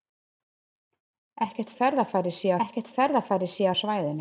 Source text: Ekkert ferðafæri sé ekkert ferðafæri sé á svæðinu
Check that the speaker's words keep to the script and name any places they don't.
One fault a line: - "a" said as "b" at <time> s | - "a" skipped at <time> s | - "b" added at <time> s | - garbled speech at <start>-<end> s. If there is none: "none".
none